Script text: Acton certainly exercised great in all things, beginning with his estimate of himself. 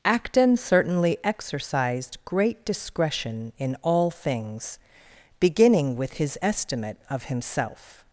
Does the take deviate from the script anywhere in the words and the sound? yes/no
yes